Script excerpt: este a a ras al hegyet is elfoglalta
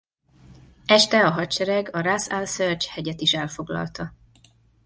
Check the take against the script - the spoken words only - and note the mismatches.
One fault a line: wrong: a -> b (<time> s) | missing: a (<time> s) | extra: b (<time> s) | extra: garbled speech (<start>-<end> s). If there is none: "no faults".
extra: hadsereg (1.3 s)
extra: serj (2.5 s)